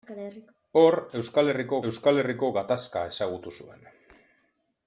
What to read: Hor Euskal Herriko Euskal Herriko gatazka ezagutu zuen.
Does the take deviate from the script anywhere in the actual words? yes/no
no